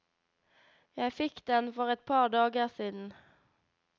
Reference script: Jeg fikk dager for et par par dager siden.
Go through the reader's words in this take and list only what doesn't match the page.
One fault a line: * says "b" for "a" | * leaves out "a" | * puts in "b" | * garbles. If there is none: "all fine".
* says "den" for "dager"
* leaves out "par"